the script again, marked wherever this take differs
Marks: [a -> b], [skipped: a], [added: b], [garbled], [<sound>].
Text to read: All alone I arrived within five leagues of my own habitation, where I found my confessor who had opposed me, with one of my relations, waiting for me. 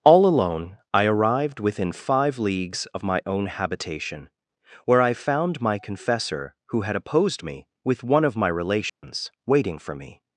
All alone I arrived within five leagues of my own habitation, where I found my confessor who had opposed me, with one of my relations, [dropout] waiting for me.